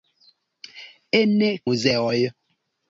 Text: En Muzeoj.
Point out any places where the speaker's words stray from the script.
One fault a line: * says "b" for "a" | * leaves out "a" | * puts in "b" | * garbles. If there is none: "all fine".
all fine